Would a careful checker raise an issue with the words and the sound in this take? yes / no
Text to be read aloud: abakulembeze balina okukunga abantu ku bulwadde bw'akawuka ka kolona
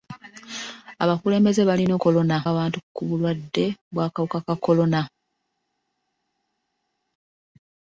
yes